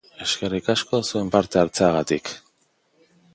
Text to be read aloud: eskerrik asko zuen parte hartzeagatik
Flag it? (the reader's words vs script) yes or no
no